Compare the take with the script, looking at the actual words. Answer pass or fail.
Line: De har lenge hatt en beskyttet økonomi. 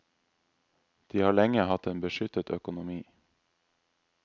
pass